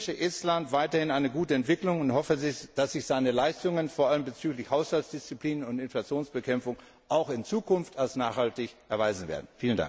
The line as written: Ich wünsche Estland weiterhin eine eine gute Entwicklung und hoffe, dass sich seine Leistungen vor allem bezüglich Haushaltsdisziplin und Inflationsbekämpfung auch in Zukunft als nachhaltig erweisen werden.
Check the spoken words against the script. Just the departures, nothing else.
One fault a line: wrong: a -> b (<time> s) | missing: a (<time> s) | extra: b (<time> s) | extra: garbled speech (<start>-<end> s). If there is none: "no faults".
missing: eine (1.3 s)